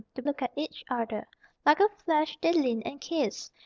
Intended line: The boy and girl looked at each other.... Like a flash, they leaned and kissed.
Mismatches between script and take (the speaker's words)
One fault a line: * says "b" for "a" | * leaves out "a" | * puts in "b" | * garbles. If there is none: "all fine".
* leaves out "boy and girl"